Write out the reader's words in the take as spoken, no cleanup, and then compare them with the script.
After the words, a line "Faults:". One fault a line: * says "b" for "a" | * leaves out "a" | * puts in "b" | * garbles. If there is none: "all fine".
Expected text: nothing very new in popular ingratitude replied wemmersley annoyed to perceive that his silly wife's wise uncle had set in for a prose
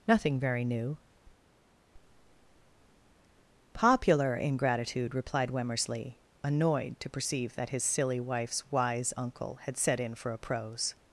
nothing very new popular ingratitude replied wemmersley annoyed to perceive that his silly wife's wise uncle had set in for a prose
Faults:
* leaves out "in"